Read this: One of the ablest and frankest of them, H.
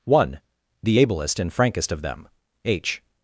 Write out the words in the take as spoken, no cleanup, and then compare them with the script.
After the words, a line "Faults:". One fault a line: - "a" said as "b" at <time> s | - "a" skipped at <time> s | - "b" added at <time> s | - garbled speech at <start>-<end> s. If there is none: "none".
One the ablest and frankest of them, H.
Faults:
- "of" skipped at 0.4 s